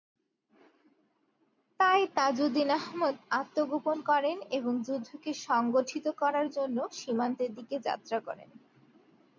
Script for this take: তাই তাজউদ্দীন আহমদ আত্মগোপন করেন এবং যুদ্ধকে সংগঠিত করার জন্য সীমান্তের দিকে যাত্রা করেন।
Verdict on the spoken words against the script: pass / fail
pass